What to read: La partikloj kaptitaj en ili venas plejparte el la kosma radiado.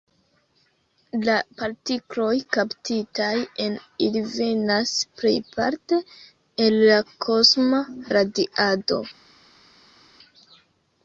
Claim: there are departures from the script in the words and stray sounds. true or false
false